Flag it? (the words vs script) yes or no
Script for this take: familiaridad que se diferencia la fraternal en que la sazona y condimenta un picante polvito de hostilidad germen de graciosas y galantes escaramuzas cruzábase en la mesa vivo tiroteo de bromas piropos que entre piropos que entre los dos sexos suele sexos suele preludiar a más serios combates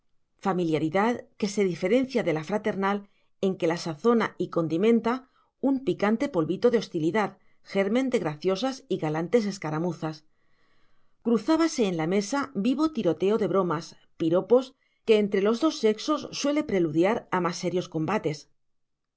yes